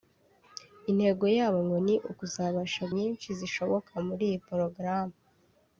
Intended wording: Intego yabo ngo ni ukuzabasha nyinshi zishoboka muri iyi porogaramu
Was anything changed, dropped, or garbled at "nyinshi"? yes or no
no